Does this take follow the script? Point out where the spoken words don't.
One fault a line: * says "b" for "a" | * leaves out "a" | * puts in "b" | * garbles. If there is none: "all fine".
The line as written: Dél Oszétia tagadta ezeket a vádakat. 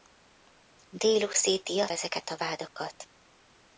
* leaves out "tagadta"